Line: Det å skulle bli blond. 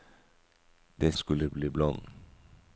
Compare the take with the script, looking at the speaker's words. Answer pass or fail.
pass